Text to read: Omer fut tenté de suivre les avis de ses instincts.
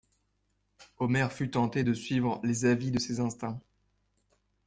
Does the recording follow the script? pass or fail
pass